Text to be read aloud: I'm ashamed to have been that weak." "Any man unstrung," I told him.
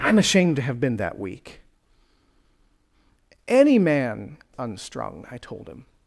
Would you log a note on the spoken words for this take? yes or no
no